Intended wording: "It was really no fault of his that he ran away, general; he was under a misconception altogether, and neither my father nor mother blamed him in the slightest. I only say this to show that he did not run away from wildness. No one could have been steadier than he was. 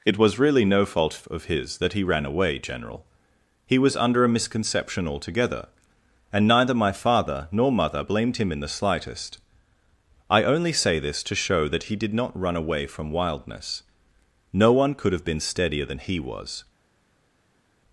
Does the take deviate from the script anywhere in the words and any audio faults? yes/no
no